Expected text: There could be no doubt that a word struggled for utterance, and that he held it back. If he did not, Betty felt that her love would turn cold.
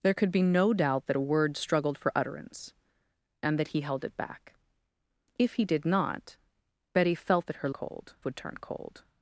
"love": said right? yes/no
no